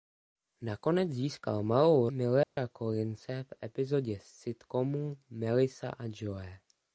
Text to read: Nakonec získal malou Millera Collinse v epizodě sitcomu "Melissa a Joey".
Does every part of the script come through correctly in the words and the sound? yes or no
no